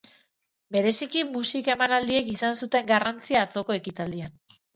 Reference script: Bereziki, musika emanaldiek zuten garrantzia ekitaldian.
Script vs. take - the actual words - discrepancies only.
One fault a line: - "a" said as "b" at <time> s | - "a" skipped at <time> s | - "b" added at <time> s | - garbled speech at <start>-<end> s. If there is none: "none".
- "izan" added at 2.4 s
- "atzoko" added at 3.5 s